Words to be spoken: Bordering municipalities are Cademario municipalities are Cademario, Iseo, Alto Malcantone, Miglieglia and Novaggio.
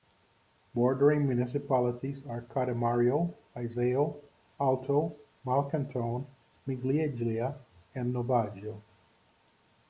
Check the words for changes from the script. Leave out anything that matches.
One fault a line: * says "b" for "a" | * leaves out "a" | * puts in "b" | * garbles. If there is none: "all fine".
* leaves out "municipalities are Cademario"